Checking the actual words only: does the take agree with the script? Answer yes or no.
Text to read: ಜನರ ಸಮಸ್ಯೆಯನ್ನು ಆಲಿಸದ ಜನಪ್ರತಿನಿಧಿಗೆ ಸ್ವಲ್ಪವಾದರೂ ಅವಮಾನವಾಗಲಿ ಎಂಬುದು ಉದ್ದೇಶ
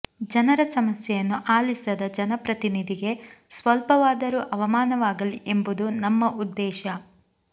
no